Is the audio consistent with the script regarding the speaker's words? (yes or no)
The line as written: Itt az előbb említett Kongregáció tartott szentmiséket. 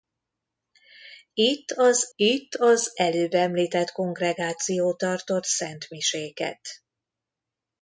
no